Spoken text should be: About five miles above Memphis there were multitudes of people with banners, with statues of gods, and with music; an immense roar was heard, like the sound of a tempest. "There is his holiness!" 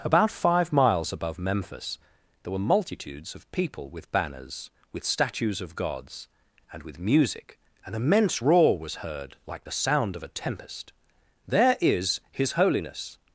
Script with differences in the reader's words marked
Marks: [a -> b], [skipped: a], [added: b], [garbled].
About five miles above Memphis there were multitudes of people with banners, with statues of gods, and with music; an immense roar was heard, like the sound of a tempest. "There is his holiness!"